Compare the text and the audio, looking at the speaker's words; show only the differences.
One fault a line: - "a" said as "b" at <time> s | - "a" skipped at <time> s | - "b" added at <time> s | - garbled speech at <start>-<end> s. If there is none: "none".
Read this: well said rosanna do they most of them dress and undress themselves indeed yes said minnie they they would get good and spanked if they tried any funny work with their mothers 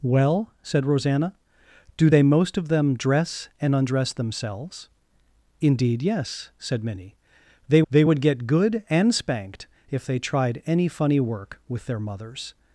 none